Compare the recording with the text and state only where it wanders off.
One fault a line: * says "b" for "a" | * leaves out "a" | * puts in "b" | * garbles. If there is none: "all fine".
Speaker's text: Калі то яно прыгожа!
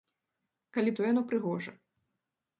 all fine